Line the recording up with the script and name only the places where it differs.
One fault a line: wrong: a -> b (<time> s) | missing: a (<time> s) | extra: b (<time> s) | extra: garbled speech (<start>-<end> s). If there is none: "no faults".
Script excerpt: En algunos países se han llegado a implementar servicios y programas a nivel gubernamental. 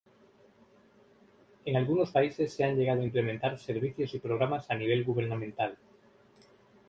no faults